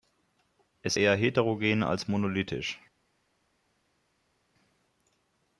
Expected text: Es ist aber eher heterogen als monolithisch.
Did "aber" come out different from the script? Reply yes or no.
yes